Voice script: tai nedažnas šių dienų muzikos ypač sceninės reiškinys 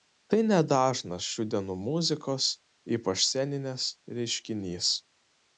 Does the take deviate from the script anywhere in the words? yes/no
no